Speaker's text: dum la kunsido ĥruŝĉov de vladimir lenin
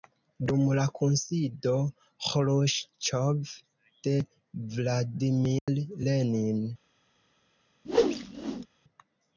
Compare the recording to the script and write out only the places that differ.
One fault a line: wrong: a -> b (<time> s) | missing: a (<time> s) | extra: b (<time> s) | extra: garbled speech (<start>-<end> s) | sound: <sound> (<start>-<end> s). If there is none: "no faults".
sound: dropout (5.6-5.7 s)
sound: whoosh (7.8-8.7 s)